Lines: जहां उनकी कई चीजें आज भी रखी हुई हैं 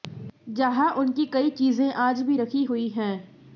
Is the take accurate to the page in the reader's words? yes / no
yes